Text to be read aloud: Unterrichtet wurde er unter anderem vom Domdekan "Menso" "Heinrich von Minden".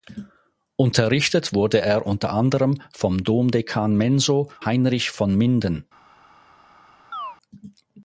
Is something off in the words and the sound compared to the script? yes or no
yes